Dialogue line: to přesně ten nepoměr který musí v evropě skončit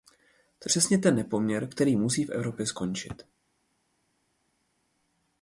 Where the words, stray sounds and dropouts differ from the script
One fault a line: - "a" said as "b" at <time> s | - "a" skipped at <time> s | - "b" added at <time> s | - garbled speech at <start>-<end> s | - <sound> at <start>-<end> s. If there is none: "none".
none